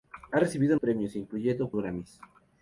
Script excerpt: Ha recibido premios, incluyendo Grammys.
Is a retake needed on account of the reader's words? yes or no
no